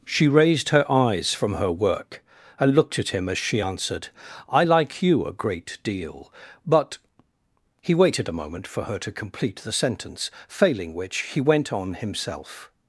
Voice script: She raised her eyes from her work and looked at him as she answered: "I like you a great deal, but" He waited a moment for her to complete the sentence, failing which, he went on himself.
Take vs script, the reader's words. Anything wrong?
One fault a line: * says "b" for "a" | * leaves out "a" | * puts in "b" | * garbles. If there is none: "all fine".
all fine